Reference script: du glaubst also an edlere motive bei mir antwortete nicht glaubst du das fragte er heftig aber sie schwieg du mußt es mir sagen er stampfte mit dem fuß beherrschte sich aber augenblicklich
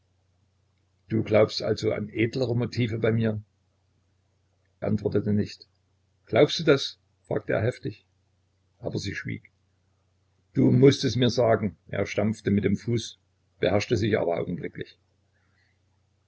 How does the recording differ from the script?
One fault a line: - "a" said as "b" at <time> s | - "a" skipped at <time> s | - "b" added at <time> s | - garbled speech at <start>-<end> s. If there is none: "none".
none